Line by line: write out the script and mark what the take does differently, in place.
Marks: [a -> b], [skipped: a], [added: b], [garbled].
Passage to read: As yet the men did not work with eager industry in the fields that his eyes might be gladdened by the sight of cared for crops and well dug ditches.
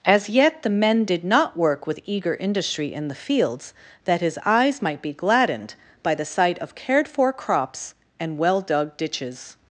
As yet the men did not work with eager industry in the fields that his eyes might be gladdened by the sight of cared for crops and well dug ditches.